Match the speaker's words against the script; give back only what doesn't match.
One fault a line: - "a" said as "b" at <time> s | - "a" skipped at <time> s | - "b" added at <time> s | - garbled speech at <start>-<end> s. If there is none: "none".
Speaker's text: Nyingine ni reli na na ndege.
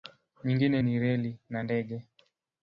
- "na" skipped at 1.6 s